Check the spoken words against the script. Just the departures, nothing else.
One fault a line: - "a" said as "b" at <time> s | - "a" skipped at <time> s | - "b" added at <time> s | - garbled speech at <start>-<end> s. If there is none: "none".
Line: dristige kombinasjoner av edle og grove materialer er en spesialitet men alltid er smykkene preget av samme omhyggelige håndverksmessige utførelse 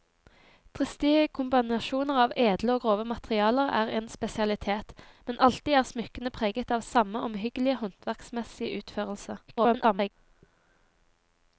- garbled speech at 9.5-10.1 s